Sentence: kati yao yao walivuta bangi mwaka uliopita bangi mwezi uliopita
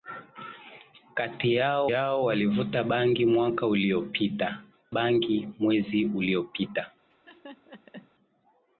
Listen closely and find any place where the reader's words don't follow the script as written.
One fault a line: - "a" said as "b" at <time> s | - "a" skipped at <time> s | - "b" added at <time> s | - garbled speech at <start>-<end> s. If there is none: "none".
none